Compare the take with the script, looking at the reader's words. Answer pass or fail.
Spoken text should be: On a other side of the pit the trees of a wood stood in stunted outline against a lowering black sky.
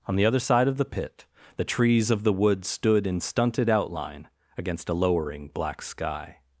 fail